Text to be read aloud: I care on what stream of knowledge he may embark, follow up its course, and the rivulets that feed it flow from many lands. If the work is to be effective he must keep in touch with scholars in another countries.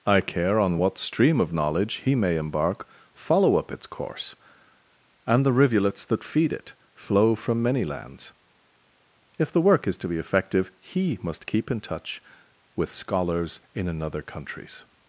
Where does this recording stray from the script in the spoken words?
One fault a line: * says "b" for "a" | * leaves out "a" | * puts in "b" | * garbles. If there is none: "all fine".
all fine